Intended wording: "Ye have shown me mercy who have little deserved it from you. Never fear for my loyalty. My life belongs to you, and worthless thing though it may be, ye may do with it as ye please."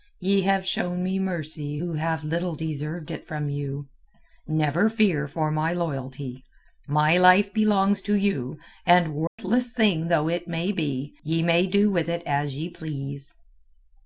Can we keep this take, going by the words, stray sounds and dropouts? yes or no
no